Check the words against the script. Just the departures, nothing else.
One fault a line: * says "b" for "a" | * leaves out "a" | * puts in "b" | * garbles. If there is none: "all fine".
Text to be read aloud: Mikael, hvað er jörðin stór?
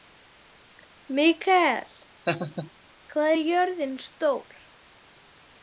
all fine